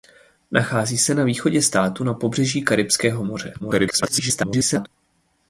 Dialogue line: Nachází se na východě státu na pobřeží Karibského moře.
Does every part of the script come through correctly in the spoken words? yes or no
no